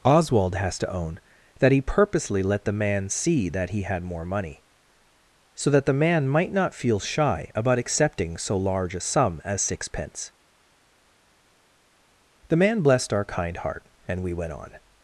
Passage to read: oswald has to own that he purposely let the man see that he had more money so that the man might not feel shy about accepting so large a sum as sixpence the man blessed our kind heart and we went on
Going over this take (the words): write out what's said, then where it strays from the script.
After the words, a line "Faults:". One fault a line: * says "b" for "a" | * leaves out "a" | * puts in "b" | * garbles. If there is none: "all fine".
oswald has to own that he purposely let the man see that he had more money so that the man might not feel shy about accepting so large a sum as sixpence the man blessed our kind heart and we went on
Faults:
all fine